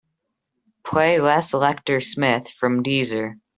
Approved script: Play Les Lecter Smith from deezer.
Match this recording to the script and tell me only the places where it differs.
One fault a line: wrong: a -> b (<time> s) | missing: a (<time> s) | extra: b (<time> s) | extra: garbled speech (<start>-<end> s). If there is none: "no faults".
no faults